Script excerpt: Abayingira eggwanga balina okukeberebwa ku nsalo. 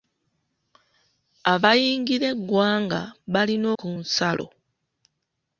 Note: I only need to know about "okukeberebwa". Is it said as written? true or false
false